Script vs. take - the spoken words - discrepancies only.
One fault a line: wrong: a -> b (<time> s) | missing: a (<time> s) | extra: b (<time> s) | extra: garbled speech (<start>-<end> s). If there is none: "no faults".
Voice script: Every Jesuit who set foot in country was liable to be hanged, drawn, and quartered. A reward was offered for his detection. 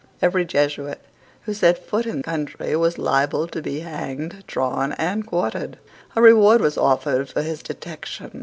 no faults